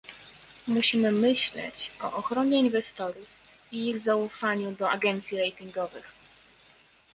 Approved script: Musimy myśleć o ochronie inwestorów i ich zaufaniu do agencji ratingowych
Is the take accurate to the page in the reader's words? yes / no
yes